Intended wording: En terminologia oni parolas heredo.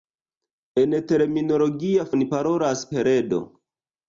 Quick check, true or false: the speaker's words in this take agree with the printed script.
true